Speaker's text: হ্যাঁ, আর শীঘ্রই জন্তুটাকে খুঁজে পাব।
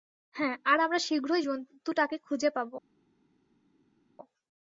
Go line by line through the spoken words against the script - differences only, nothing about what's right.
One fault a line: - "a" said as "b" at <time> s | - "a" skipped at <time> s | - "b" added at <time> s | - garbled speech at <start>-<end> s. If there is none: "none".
- "আমরা" added at 0.8 s